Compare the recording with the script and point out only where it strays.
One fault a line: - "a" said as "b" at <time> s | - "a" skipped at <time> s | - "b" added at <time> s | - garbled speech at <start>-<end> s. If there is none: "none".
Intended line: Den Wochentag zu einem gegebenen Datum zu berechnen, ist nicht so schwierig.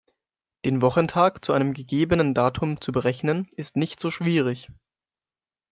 none